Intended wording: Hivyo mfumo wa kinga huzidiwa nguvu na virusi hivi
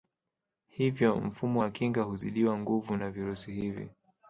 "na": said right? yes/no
yes